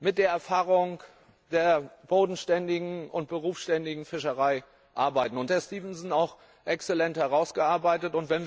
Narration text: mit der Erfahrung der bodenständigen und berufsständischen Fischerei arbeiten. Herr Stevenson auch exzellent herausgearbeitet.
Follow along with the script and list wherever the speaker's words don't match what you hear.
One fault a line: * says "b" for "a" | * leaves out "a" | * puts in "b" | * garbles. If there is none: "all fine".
all fine